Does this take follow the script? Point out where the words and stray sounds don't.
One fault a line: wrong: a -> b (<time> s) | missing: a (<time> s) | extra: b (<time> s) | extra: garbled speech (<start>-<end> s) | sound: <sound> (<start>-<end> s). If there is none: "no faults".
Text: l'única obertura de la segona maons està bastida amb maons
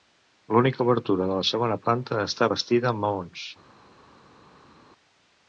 wrong: maons -> planta (1.9 s)